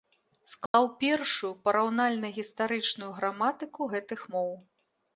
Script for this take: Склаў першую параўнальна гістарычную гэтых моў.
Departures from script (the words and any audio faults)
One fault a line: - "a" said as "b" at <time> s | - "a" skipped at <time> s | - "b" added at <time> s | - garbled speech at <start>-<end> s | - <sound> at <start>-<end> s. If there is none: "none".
- dropout at 0.7-0.7 s
- "граматыку" added at 3.2 s